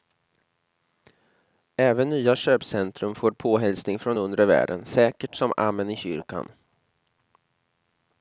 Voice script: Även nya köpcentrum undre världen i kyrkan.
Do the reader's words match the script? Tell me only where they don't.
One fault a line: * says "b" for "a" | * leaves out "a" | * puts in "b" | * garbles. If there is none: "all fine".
* puts in "får påhälsning från"
* puts in "säkert som amen"